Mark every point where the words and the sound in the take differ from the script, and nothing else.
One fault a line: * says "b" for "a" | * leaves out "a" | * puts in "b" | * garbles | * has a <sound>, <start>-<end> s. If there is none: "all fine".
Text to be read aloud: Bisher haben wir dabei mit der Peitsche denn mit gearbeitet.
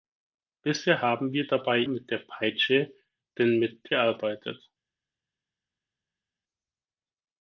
all fine